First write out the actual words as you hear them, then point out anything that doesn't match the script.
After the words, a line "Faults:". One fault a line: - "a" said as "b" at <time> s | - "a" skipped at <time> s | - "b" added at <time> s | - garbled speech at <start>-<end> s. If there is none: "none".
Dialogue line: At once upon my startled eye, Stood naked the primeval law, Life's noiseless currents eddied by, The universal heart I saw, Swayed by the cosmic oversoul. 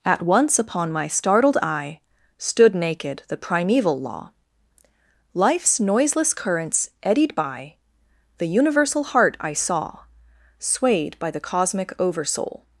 At once upon my startled eye, Stood naked the primeval law, Life's noiseless currents eddied by, The universal heart I saw, Swayed by the cosmic oversoul.
Faults:
none